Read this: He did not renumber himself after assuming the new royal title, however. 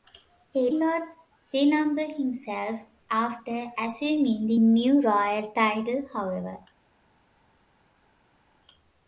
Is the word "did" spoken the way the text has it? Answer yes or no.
no